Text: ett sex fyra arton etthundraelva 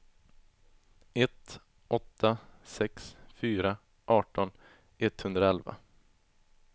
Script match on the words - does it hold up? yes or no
no